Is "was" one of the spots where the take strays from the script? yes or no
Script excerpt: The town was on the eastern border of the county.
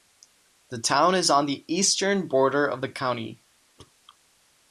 yes